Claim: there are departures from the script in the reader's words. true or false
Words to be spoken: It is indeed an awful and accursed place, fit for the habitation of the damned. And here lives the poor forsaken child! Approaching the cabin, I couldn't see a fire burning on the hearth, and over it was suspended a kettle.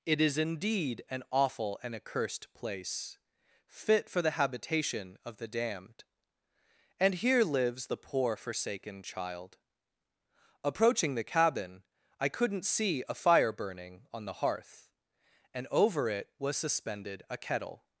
false